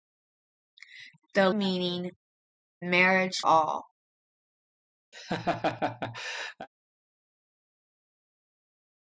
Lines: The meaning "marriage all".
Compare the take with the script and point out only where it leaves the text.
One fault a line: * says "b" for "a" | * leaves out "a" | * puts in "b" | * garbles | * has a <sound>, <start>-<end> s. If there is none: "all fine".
* has a laugh, 5.1-6.7 s